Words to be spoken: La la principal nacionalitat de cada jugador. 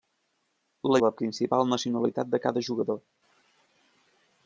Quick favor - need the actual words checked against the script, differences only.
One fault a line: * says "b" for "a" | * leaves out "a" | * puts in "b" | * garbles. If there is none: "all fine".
all fine